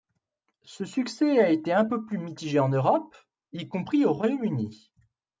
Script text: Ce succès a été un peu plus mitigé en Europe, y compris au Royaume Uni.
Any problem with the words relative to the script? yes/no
no